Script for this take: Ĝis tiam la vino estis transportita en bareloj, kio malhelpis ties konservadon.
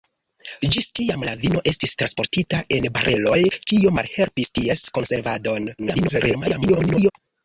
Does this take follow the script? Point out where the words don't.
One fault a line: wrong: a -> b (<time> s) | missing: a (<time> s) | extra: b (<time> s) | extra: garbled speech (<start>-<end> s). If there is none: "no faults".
extra: garbled speech (5.8-7.1 s)